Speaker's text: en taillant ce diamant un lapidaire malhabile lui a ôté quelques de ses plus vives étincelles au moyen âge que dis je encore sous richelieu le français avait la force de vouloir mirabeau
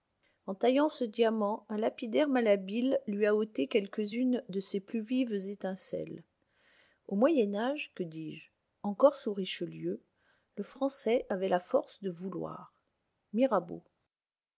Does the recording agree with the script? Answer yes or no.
no